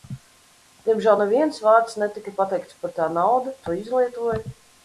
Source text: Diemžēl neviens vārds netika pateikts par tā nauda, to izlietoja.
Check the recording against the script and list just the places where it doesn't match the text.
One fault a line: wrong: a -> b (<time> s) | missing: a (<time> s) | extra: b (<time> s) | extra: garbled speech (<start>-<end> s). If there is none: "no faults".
no faults